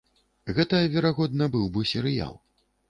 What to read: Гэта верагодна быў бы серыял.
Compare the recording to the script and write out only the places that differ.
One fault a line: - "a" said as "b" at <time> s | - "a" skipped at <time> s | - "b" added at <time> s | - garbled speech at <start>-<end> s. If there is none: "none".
none